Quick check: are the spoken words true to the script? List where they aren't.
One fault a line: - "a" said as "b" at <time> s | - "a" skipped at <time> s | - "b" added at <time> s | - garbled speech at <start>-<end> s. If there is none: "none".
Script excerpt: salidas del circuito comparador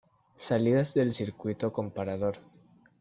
none